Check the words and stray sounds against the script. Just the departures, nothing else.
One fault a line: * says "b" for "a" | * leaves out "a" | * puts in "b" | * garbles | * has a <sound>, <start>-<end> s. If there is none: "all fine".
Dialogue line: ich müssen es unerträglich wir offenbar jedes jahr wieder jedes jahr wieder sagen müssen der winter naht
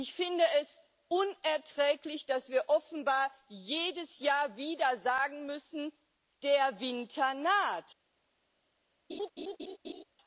* says "finde" for "müssen"
* puts in "dass"
* leaves out "jedes jahr wieder"
* has a laugh, 9.1-10.0 s